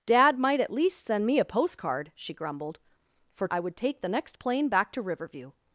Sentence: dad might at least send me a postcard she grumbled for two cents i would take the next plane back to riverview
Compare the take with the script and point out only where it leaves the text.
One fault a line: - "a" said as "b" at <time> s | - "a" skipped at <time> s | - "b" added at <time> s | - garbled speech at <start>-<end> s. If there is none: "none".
- "two cents" skipped at 3.5 s